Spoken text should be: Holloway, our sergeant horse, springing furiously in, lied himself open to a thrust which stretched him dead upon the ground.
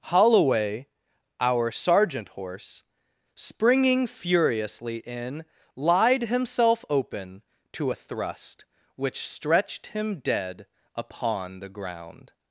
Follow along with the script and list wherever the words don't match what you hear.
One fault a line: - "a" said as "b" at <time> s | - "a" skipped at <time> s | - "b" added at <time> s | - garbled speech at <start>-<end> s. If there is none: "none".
none